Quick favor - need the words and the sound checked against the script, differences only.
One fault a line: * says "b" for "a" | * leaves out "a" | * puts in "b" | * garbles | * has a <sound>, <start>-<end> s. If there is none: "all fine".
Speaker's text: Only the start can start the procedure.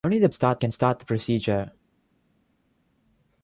all fine